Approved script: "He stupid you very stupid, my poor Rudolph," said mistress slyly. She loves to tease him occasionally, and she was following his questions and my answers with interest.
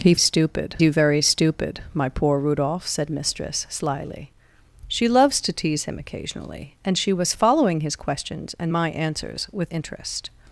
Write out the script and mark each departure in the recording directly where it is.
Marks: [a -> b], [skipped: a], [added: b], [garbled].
"He stupid you very stupid, my poor Rudolph," said mistress slyly. She loves to tease him occasionally, and she was following his questions and my answers with interest.